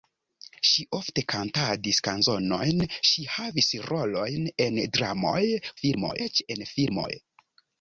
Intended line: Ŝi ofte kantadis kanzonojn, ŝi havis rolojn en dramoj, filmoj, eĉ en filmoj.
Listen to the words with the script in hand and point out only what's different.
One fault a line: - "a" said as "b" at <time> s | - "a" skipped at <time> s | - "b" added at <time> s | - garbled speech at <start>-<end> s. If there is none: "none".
none